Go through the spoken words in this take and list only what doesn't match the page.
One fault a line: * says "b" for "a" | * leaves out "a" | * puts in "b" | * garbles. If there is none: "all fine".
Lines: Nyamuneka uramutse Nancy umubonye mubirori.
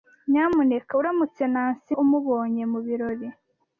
all fine